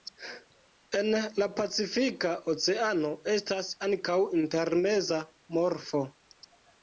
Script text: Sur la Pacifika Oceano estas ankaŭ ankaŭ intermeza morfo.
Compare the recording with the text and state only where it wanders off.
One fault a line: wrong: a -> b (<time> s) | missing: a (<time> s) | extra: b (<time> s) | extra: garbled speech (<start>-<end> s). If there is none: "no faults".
wrong: Sur -> En (1.0 s)
missing: ankaŭ (4.2 s)